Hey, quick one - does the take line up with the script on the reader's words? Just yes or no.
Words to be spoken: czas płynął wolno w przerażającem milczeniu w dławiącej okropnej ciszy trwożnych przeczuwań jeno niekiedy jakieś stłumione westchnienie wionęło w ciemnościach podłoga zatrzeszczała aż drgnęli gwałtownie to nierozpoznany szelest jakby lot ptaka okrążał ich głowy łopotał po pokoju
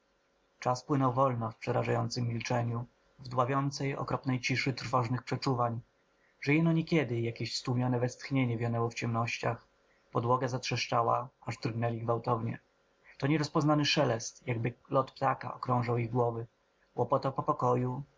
no